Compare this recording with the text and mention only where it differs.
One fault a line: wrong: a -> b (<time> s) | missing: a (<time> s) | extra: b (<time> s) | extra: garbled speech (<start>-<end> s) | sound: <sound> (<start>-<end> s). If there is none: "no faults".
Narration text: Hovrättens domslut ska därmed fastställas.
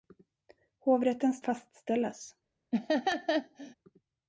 missing: domslut ska därmed (1.4 s)
sound: laugh (2.7-3.7 s)